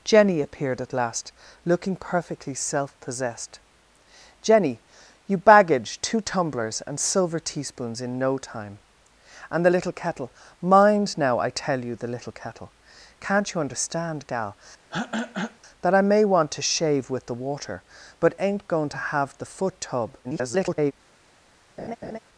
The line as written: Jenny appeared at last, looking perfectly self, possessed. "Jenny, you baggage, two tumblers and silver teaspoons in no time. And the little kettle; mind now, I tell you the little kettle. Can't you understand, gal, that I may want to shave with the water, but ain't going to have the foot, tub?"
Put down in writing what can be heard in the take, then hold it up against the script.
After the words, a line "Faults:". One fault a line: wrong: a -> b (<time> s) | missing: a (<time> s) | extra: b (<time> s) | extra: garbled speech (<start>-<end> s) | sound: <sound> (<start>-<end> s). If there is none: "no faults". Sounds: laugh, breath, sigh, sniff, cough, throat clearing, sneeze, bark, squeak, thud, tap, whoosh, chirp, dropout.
Jenny appeared at last, looking perfectly self, possessed. "Jenny, you baggage, two tumblers and silver teaspoons in no time. And the little kettle; mind now, I tell you the little kettle. Can't you understand, gal, that I may want to shave with the water, but ain't going to have the foot, tub?" [garbled]
Faults:
sound: throat clearing (14.9-15.6 s)
extra: garbled speech (20.2-20.9 s)
sound: laugh (21.8-22.2 s)